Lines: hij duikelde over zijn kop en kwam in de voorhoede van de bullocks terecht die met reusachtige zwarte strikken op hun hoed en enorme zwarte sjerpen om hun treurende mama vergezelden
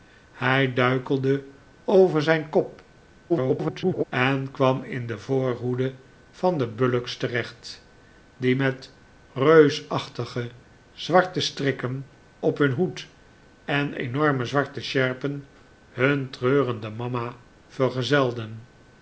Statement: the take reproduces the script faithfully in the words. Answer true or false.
false